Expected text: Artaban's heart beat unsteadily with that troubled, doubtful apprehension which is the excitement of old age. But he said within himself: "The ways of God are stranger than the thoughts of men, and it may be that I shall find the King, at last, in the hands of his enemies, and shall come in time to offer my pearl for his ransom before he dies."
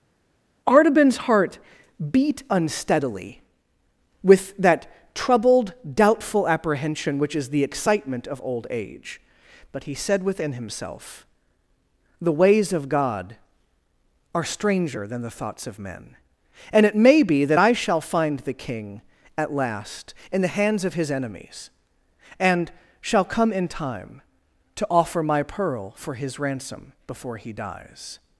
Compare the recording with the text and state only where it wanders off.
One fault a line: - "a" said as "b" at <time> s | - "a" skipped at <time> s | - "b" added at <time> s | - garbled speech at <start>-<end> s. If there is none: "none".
none